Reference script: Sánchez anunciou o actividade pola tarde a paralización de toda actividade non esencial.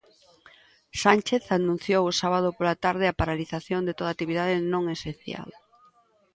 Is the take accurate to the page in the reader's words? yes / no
no